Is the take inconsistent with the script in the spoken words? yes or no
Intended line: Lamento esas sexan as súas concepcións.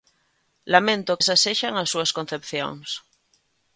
no